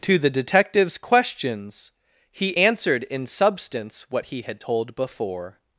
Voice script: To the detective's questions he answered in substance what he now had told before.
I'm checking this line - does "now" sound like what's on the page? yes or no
no